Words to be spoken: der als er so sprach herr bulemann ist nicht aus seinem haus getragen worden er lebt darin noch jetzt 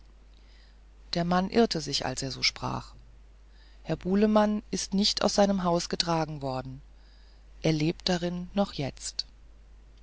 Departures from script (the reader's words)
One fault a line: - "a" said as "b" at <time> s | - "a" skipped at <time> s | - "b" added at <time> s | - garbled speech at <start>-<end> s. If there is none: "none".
- "mann irrte sich" added at 1.2 s